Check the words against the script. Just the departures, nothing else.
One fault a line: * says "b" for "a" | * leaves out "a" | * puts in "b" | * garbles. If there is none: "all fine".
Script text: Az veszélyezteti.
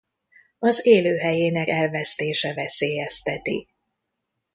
* puts in "élőhelyének elvesztése"